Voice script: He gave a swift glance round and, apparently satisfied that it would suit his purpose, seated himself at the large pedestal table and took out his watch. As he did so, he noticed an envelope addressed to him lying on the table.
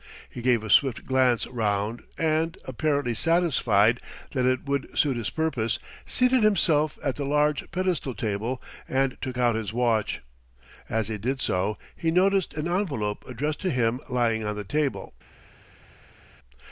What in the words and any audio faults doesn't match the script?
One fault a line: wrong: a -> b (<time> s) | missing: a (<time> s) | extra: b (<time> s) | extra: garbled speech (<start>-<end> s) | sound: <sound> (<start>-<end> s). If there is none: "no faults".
no faults